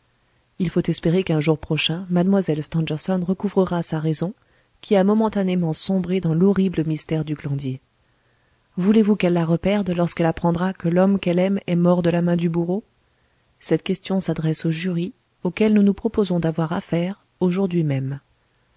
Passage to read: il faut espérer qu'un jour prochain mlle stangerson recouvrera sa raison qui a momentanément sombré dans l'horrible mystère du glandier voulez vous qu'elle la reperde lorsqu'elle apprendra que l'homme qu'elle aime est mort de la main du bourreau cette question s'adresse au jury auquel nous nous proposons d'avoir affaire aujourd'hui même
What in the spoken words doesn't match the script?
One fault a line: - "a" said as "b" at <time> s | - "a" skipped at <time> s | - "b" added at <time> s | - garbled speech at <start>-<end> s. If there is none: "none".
none